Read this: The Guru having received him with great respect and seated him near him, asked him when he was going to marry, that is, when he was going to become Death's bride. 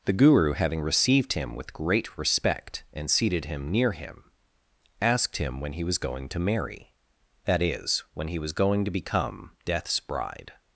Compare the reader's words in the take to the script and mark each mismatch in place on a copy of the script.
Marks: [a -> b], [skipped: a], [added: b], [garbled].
The Guru having received him with great respect and seated him near him, asked him when he was going to marry, that is, when he was going to become Death's bride.